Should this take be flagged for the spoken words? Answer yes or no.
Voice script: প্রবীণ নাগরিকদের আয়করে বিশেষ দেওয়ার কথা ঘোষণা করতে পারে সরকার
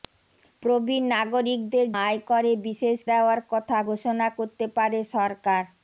no